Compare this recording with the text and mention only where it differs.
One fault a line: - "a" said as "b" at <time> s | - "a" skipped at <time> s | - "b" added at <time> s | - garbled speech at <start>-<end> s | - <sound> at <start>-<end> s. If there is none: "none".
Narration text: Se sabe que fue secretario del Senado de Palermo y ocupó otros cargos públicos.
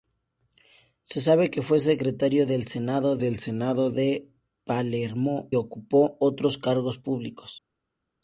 - "del Senado" added at 3.2 s
- "y" skipped at 5.5 s